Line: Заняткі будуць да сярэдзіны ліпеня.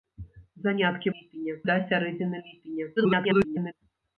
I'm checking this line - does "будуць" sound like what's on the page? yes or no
no